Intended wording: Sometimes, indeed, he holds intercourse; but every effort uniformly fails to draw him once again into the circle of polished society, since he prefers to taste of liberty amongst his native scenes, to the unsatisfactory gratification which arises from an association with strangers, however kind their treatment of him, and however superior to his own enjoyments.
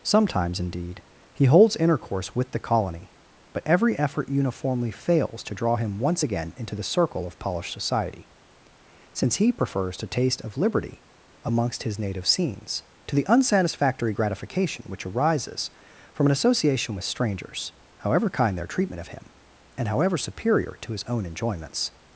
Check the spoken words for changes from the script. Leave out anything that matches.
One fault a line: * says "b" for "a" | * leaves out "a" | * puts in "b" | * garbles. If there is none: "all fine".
* puts in "with the colony"